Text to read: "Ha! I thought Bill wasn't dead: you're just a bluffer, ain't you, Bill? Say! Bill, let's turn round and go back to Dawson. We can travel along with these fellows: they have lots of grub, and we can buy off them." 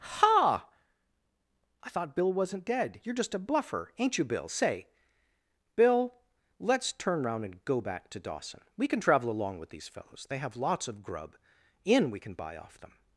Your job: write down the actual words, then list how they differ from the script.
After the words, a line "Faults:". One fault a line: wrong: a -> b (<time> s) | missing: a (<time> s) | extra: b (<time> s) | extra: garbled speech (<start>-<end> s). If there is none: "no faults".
"Ha! I thought Bill wasn't dead: you're just a bluffer, ain't you, Bill? Say! Bill, let's turn round and go back to Dawson. We can travel along with these fellows: they have lots of grub, in we can buy off them."
Faults:
wrong: and -> in (11.8 s)